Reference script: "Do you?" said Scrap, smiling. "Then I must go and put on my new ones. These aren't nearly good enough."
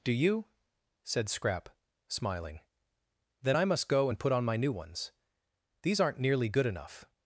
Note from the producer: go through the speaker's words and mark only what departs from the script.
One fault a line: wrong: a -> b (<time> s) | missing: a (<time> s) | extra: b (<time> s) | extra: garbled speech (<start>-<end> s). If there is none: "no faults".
no faults